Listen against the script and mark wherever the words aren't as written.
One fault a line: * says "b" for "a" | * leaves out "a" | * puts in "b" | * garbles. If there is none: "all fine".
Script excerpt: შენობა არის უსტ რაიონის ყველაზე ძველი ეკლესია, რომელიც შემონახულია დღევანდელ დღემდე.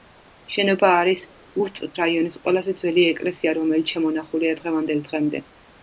all fine